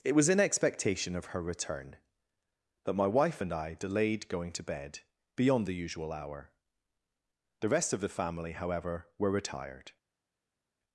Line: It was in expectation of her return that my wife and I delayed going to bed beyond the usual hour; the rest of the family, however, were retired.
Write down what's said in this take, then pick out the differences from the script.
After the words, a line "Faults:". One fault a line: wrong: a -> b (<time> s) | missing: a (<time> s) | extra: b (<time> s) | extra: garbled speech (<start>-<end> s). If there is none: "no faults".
It was in expectation of her return that my wife and I delayed going to bed beyond the usual hour; the rest of the family, however, were retired.
Faults:
no faults